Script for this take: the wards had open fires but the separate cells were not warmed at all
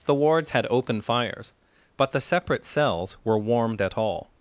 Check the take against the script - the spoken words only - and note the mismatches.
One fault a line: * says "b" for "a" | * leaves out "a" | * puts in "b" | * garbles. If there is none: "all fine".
* leaves out "not"